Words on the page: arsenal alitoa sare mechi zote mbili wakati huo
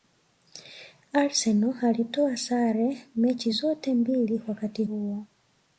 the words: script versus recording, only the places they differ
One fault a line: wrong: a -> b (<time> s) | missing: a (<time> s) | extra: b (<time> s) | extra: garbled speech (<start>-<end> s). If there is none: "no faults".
no faults